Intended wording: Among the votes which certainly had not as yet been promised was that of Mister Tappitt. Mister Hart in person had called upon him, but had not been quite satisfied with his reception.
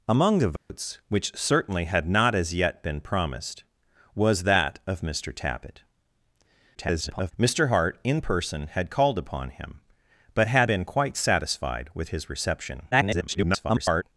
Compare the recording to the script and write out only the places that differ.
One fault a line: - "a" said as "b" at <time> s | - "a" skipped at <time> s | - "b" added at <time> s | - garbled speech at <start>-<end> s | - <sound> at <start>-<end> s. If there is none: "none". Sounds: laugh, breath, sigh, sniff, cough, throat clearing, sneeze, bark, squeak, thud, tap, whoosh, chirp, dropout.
- dropout at 0.6-0.7 s
- garbled speech at 6.7-7.3 s
- "not" skipped at 10.7 s
- garbled speech at 12.9-14.0 s